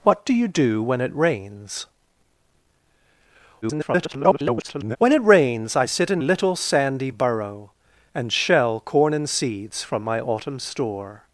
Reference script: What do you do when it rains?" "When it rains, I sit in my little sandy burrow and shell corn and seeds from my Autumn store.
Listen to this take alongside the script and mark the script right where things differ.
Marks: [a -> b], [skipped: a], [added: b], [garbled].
What do you do when it rains?" [garbled] "When it rains, I sit in [skipped: my] little sandy burrow and shell corn and seeds from my Autumn store.